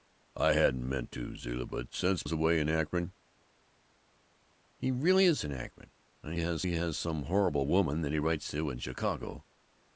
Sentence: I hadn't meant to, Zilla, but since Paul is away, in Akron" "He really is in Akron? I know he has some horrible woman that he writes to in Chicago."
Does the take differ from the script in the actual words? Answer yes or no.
yes